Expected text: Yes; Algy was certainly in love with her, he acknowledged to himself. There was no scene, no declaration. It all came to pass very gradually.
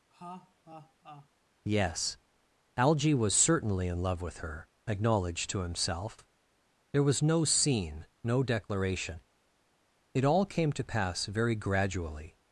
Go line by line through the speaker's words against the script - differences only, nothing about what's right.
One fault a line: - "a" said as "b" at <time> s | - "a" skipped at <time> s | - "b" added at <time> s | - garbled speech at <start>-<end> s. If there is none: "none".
- "he" skipped at 4.7 s